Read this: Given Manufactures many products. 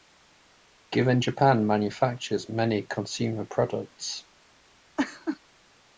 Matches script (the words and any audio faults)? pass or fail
fail